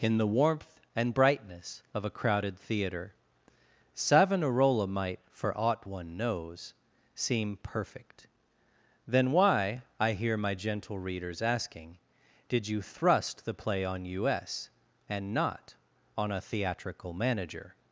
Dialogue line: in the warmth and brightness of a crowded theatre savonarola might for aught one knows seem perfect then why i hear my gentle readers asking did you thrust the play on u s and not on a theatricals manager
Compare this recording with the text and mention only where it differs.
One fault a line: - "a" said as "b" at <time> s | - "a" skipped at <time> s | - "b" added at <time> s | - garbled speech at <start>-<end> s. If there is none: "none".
- "theatricals" said as "theatrical" at 16.4 s